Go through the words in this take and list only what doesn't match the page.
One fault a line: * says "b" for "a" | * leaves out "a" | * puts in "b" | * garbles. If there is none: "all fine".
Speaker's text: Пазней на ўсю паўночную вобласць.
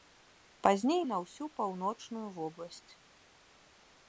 all fine